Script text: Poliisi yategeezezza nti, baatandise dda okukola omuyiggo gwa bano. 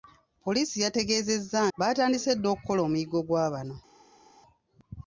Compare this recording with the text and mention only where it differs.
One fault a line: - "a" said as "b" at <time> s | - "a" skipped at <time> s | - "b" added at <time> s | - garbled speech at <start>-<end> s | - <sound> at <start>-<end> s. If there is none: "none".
- "nti" skipped at 1.6 s